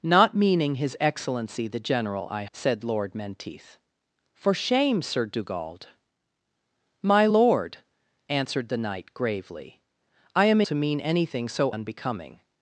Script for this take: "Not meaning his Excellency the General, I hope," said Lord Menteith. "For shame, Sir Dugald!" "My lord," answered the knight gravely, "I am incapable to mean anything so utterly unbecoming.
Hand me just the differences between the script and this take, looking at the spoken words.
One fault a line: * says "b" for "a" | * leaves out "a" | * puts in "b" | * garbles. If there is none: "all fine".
* leaves out "hope"
* leaves out "incapable"
* leaves out "utterly"